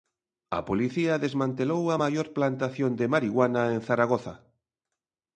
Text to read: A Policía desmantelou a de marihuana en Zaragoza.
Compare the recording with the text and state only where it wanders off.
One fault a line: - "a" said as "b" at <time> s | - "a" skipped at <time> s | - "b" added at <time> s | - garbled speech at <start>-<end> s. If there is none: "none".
- "maior plantación" added at 2.0 s